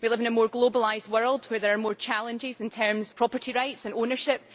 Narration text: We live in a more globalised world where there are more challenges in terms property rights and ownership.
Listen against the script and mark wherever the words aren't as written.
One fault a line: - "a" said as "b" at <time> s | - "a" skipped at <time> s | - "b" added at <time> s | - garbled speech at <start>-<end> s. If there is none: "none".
none